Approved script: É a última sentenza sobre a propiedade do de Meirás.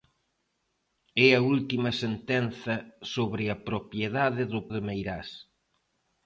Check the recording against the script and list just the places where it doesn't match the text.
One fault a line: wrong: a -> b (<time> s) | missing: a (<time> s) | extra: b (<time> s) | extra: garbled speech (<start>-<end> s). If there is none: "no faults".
no faults